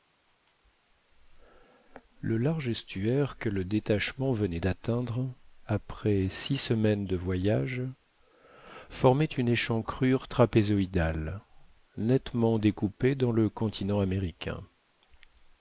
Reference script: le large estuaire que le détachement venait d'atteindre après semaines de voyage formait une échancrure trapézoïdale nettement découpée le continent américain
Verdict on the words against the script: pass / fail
fail